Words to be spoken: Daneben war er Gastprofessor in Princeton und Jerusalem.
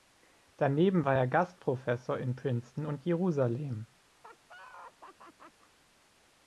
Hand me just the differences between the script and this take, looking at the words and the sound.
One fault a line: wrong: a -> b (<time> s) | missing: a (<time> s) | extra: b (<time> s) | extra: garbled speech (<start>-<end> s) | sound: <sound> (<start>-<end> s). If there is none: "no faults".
sound: laugh (4.2-5.7 s)